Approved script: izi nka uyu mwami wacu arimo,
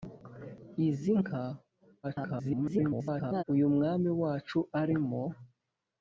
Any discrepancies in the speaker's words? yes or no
yes